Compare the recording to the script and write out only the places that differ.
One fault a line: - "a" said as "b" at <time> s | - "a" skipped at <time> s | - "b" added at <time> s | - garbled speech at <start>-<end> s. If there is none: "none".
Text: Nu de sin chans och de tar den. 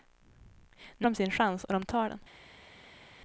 none